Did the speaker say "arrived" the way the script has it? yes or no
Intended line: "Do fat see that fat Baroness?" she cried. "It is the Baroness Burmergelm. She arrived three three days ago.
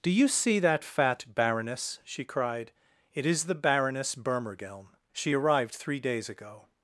yes